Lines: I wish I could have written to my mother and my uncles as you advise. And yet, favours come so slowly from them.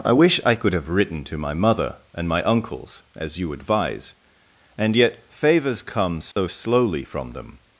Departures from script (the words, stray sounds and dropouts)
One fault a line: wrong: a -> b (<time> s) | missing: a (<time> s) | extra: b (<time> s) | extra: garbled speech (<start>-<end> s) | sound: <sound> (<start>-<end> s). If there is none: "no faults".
sound: dropout (6.3-6.4 s)